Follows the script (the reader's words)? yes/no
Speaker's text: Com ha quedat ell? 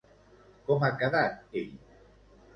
yes